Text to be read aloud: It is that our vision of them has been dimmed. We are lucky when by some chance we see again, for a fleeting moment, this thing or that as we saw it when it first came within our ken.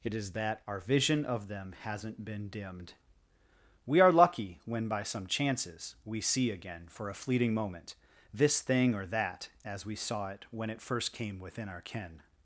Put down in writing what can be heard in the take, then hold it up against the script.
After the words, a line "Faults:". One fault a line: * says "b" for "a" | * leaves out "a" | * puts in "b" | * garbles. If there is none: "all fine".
It is that our vision of them hasn't been dimmed. We are lucky when by some chances we see again, for a fleeting moment, this thing or that as we saw it when it first came within our ken.
Faults:
* says "hasn't" for "has"
* says "chances" for "chance"